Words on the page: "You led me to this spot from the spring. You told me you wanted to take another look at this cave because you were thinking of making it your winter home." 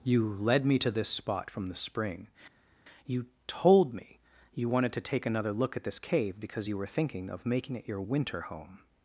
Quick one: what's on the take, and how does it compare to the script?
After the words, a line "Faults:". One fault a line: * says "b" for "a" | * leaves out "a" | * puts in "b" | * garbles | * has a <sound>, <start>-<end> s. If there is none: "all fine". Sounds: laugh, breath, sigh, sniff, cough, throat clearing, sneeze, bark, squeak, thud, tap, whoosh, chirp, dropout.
"You led me to this spot from the spring. You told me you wanted to take another look at this cave because you were thinking of making it your winter home."
Faults:
all fine